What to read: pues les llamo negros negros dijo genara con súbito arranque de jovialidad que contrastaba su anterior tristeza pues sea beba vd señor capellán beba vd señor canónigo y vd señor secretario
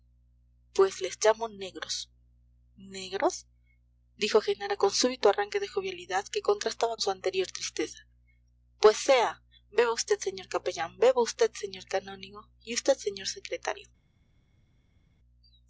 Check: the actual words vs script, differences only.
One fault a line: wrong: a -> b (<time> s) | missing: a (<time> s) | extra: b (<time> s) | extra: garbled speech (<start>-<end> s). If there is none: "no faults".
no faults